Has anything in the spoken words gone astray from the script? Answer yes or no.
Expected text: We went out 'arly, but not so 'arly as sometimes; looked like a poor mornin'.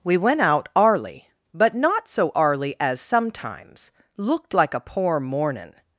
no